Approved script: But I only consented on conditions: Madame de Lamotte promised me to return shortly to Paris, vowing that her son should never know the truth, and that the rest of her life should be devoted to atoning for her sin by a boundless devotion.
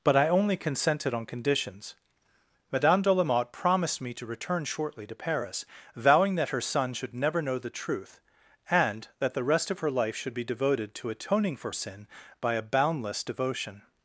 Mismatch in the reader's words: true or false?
true